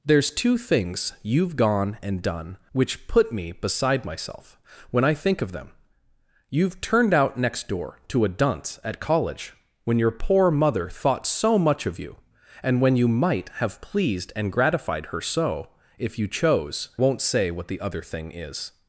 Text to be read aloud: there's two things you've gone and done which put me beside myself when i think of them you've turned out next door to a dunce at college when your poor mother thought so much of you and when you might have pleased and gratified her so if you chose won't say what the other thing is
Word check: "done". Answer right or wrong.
right